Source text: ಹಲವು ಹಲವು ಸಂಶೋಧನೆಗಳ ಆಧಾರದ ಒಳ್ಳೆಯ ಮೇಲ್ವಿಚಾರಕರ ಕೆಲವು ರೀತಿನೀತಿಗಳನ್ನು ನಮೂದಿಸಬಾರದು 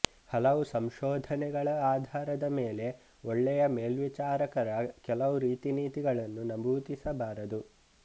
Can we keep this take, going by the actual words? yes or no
no